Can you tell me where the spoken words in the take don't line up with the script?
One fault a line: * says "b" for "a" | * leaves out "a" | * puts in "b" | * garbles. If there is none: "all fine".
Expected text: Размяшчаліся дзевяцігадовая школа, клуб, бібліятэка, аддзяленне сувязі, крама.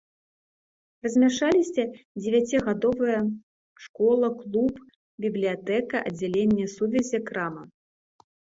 all fine